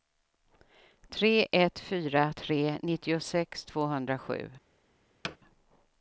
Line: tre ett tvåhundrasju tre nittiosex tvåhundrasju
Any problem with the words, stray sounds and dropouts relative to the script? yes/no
yes